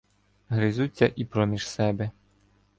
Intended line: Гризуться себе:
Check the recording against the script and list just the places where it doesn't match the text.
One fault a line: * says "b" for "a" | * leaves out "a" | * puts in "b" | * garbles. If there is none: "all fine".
* puts in "і проміж"